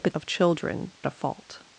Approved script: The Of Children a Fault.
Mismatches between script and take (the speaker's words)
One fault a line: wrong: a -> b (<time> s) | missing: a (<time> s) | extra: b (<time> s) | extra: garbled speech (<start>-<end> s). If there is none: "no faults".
no faults